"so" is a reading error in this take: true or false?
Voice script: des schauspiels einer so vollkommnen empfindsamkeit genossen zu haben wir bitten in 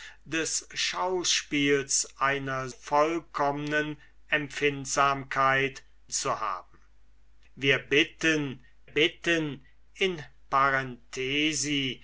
true